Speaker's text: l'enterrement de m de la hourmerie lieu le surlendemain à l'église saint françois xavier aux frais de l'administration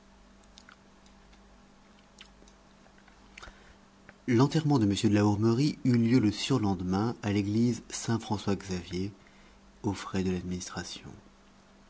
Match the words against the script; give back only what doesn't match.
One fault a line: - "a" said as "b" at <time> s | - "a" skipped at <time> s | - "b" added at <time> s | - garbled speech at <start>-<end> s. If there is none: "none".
- "eut" added at 5.8 s